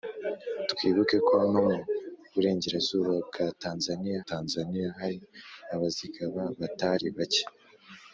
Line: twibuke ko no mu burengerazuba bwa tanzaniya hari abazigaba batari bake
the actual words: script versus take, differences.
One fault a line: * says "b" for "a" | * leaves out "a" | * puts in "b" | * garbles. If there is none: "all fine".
* puts in "tanzaniya"